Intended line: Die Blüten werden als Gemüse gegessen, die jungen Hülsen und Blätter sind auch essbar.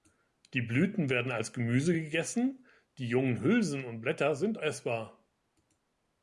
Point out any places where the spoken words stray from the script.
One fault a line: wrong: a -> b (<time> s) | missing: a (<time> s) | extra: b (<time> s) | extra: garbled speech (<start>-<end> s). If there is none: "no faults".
missing: auch (4.6 s)